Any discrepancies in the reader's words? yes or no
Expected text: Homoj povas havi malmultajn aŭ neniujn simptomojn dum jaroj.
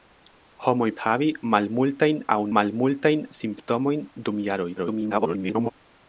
yes